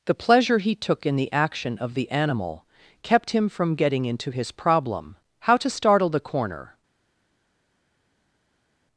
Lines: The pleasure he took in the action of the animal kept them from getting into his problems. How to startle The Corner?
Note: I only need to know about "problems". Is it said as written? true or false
false